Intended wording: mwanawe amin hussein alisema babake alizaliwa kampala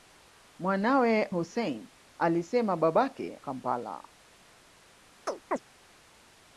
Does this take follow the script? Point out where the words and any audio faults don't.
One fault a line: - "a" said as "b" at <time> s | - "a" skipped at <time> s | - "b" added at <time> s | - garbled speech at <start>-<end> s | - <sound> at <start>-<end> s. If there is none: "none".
- "amin" skipped at 1.2 s
- "alizaliwa" skipped at 3.4 s
- chirp at 5.3-5.6 s